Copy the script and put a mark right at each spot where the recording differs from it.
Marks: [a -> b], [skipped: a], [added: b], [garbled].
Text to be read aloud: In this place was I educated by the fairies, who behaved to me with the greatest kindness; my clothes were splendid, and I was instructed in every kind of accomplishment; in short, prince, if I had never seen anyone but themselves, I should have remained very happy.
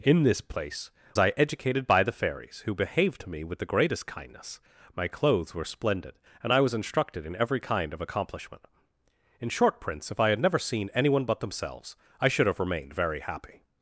In this place [skipped: was] I educated by the fairies, who behaved to me with the greatest kindness; my clothes were splendid, and I was instructed in every kind of accomplishment; in short, prince, if I had never seen anyone but themselves, I should have remained very happy.